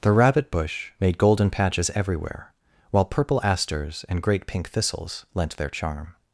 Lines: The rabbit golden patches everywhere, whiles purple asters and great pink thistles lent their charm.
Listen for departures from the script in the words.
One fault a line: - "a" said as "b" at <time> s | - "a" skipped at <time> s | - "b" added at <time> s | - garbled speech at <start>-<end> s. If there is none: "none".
- "bush made" added at 0.5 s
- "whiles" said as "while" at 2.9 s